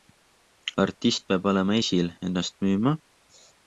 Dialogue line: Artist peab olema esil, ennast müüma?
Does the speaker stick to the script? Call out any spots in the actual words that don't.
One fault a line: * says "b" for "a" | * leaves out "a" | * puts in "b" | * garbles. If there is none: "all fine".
all fine